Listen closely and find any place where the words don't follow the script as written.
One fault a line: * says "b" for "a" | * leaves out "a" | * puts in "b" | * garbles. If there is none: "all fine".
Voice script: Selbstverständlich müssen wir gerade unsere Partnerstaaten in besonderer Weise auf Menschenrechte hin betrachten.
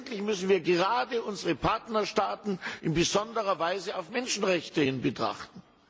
all fine